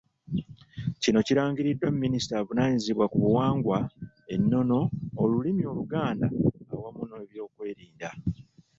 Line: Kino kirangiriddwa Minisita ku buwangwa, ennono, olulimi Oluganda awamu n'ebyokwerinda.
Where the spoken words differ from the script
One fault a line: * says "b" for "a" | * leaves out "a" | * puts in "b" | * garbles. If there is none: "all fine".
* puts in "avunaanyizibwa"